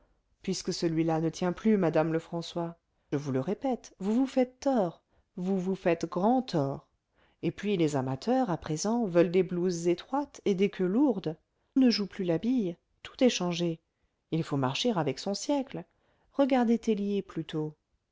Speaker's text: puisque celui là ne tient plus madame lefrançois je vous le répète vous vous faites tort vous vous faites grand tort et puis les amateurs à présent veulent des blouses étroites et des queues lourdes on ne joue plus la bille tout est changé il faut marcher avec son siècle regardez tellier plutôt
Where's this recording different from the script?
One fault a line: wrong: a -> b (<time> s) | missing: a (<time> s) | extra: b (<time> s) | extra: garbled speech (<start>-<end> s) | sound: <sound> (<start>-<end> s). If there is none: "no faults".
missing: je (2.8 s)
missing: on (11.4 s)